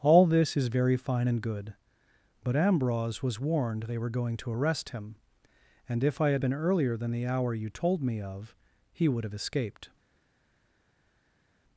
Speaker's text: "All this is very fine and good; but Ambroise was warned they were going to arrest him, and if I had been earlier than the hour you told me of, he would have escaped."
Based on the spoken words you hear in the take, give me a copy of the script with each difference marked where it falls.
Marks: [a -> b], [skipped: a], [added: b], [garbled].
"All this is very fine and good; but Ambroise was warned they were going to arrest him, and if I had been earlier than the hour you told me of, he would have escaped."